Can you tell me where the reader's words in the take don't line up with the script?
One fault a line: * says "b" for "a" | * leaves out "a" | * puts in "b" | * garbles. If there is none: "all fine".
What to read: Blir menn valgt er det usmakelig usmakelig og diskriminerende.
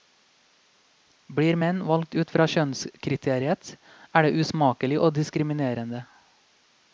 * puts in "ut fra kjønnskriteriet"
* leaves out "usmakelig"